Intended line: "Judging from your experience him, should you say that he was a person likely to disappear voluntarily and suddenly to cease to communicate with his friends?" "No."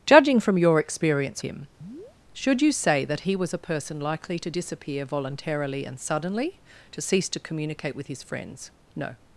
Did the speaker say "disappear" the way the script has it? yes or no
yes